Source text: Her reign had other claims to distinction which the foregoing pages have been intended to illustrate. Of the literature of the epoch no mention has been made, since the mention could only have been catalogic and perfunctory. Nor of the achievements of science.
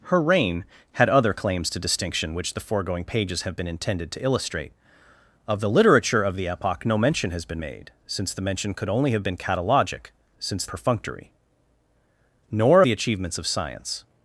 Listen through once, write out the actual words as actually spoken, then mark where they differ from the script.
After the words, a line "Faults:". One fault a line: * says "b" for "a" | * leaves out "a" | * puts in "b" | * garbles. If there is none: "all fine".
Her reign had other claims to distinction which the foregoing pages have been intended to illustrate. Of the literature of the epoch no mention has been made, since the mention could only have been catalogic since perfunctory. Nor the achievements of science.
Faults:
* says "since" for "and"
* leaves out "of"